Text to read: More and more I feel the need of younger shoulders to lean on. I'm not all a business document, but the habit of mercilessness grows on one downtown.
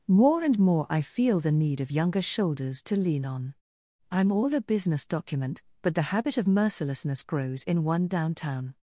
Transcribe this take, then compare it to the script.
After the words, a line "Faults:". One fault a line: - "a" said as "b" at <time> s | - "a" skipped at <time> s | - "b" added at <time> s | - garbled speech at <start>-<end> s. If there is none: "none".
More and more I feel the need of younger shoulders to lean on. I'm all a business document, but the habit of mercilessness grows in one downtown.
Faults:
- "not" skipped at 4.3 s
- "on" said as "in" at 7.6 s